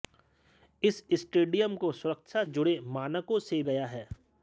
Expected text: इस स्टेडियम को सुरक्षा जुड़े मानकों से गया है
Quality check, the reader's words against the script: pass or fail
pass